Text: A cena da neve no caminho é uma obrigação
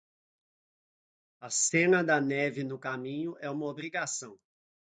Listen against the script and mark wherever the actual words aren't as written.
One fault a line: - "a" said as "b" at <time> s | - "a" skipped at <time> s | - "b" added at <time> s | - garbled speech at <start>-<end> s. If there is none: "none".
none